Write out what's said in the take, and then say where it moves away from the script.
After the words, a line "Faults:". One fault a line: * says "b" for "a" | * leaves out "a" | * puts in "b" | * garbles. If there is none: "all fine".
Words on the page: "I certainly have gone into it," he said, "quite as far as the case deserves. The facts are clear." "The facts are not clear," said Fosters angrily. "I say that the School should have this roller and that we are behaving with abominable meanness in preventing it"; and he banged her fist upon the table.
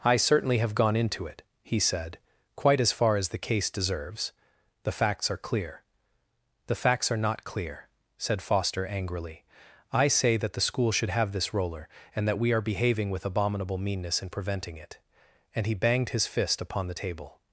"I certainly have gone into it," he said, "quite as far as the case deserves. The facts are clear." "The facts are not clear," said Foster angrily. "I say that the School should have this roller and that we are behaving with abominable meanness in preventing it"; and he banged his fist upon the table.
Faults:
* says "Foster" for "Fosters"
* says "his" for "her"